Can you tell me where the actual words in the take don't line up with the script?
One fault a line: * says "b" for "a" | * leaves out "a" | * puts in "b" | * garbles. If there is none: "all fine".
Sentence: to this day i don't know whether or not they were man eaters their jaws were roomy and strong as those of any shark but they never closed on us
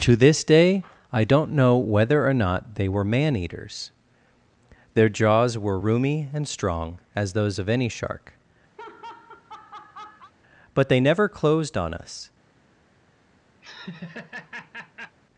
all fine